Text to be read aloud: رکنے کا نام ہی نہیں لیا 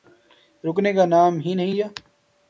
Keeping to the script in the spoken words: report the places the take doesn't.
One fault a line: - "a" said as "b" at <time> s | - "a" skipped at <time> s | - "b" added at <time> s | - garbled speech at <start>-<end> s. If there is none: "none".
none